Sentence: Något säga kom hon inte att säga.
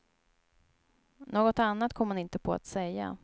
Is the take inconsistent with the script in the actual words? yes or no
yes